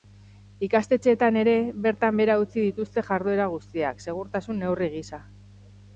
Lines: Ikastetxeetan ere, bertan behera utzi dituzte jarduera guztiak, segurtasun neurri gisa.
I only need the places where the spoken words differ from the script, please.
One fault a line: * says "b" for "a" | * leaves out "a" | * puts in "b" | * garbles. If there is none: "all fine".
all fine